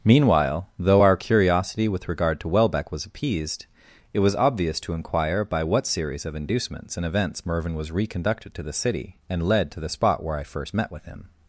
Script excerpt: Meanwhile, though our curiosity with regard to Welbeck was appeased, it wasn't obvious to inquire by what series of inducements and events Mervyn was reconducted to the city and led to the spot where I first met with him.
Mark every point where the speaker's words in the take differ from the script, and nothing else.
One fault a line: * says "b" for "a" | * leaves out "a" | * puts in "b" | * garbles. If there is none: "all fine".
* says "was" for "wasn't"